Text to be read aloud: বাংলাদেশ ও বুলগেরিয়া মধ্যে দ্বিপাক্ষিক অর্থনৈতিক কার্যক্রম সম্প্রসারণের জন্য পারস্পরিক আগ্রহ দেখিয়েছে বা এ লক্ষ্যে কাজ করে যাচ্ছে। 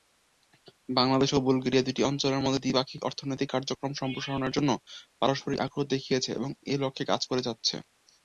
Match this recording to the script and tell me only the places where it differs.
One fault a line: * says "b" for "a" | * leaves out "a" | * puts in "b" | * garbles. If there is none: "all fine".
* puts in "দুটি অঞ্চলের"
* says "এবং" for "বা"